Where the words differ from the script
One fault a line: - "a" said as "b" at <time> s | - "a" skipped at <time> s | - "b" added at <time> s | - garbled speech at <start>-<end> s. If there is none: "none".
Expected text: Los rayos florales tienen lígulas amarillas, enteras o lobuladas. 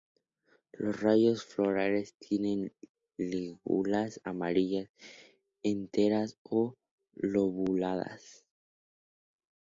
none